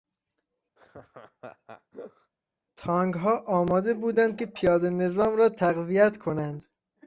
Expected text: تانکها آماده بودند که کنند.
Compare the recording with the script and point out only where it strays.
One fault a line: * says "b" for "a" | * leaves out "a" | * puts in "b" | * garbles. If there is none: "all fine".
* puts in "پیادهنظام را تقویت"